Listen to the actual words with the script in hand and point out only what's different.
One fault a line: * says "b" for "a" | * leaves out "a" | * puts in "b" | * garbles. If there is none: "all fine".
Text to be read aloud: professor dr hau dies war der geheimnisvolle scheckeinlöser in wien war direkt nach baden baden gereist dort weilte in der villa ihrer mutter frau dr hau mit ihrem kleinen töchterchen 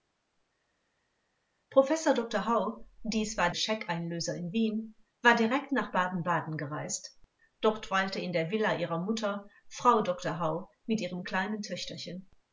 * leaves out "der geheimnisvolle"